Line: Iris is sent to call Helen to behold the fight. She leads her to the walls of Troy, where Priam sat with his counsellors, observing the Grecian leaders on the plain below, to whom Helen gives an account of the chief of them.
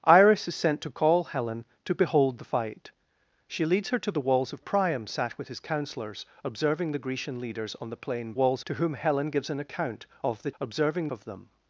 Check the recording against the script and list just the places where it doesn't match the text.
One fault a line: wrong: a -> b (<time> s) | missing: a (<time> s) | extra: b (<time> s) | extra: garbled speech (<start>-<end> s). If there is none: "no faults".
missing: Troy where (4.6 s)
wrong: below -> walls (8.3 s)
wrong: chief -> observing (10.6 s)